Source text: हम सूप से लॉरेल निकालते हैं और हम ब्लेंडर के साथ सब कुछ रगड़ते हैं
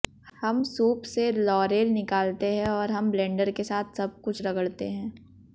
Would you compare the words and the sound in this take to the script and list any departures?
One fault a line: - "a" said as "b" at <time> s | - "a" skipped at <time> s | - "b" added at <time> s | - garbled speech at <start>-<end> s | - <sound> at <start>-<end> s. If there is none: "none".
none